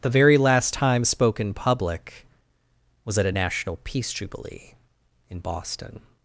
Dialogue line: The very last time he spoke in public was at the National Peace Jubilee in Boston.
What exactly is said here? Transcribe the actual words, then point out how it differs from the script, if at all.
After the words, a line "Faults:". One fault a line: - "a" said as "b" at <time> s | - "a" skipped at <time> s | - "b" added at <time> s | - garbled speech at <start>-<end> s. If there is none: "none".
The very last time spoke in public was at a National Peace Jubilee in Boston.
Faults:
- "he" skipped at 1.1 s
- "the" said as "a" at 3.3 s